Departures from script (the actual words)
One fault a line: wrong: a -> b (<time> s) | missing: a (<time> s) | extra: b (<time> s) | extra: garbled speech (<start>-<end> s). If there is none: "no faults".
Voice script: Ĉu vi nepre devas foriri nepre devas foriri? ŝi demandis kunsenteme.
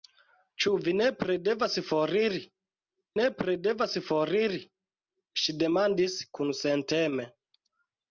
no faults